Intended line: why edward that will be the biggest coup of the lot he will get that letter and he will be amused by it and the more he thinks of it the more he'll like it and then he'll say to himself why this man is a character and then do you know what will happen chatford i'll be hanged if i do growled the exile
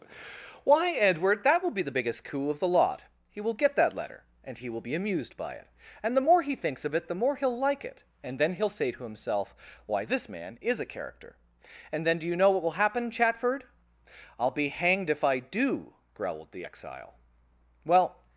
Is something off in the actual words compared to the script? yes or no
yes